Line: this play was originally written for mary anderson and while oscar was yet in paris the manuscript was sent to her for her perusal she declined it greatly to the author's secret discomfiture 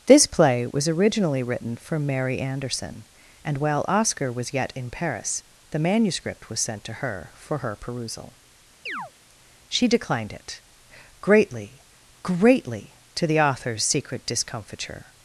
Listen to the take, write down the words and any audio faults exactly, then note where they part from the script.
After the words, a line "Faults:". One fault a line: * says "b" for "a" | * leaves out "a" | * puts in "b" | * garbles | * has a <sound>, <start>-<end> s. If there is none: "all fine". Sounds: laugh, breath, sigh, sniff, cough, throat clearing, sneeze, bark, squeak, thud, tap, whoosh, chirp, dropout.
this play was originally written for mary anderson and while oscar was yet in paris the manuscript was sent to her for her perusal she declined it greatly greatly to the author's secret discomfiture
Faults:
* has a chirp, 8.9-9.1 s
* puts in "greatly"